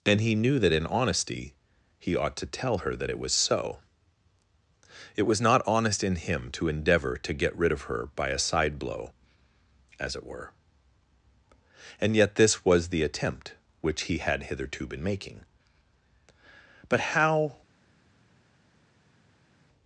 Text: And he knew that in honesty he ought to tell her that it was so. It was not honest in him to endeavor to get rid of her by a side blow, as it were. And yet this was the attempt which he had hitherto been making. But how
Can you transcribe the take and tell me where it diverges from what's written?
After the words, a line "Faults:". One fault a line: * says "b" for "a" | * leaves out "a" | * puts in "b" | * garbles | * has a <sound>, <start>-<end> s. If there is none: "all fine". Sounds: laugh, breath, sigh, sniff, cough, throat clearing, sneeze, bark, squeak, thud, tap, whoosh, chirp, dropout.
And he knew that in honesty he ought to tell her that it was so. It was not honest in him to endeavor to get rid of her by a side blow, as it were. And yet this was the attempt which he had hitherto been making. But how
Faults:
all fine